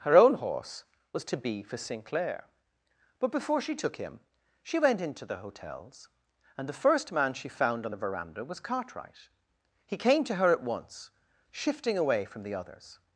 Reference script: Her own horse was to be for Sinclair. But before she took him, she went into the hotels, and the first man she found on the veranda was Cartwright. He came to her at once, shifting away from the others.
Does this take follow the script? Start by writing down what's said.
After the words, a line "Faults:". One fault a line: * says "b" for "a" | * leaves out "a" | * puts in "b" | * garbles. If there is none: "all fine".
Her own horse was to be for Sinclair. But before she took him, she went into the hotels, and the first man she found on the veranda was Cartwright. He came to her at once, shifting away from the others.
Faults:
all fine